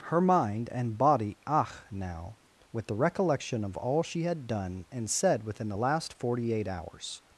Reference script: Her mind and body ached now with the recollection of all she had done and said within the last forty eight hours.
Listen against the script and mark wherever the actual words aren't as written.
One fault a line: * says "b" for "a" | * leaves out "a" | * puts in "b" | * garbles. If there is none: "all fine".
* says "ach" for "ached"